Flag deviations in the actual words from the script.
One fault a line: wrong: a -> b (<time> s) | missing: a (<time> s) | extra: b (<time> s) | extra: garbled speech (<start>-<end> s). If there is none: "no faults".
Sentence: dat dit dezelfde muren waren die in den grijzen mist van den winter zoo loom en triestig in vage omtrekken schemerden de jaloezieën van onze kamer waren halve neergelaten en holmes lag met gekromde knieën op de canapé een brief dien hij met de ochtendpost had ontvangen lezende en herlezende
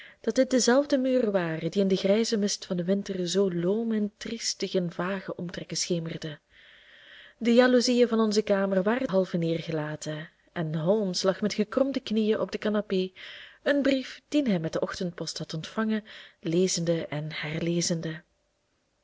no faults